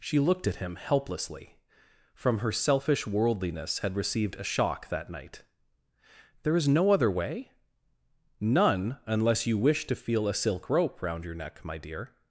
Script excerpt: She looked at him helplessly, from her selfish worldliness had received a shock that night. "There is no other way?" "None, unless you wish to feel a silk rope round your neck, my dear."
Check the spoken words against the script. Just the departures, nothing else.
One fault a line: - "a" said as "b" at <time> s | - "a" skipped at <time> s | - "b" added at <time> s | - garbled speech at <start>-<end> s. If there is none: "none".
none